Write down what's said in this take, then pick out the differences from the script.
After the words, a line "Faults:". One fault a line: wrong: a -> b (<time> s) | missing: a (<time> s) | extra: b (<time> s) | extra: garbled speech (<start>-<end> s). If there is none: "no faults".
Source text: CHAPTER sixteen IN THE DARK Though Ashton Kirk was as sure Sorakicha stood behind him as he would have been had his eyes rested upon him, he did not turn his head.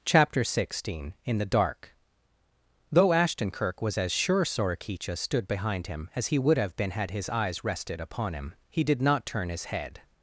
CHAPTER sixteen IN THE DARK Though Ashton Kirk was as sure Sorakicha stood behind him as he would have been had his eyes rested upon him, he did not turn his head.
Faults:
no faults